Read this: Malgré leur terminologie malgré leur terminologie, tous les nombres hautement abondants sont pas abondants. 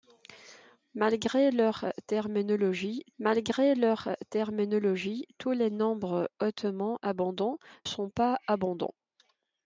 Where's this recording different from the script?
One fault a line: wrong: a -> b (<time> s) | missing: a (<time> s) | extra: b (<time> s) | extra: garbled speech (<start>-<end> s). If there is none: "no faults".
no faults